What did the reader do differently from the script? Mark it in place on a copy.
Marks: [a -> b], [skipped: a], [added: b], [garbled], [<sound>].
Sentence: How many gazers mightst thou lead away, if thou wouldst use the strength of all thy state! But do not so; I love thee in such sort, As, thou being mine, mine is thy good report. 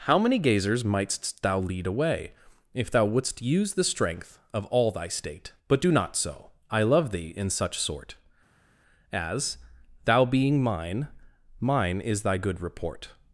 How many gazers mightst thou lead away, if thou wouldst use the strength of all thy state! But do not so; I love thee in such sort, As, thou being mine, mine is thy good report.